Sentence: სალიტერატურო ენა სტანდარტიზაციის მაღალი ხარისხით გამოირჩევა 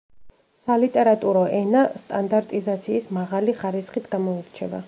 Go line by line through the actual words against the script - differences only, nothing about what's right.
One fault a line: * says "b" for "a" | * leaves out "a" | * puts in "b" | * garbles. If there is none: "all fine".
all fine